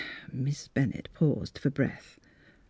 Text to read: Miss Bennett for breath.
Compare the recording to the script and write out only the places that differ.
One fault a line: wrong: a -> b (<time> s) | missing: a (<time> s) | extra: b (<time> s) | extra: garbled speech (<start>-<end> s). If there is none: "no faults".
extra: paused (1.1 s)